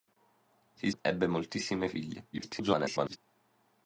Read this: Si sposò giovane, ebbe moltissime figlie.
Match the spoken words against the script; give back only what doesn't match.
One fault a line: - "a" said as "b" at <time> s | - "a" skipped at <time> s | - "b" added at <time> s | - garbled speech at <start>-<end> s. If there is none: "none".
- "sposò giovane" skipped at 0.9 s
- garbled speech at 2.3-3.2 s